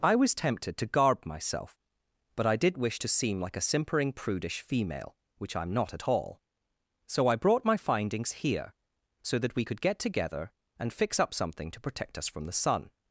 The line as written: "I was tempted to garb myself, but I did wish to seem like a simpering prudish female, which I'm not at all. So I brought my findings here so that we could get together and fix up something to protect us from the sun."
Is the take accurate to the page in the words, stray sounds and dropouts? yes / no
yes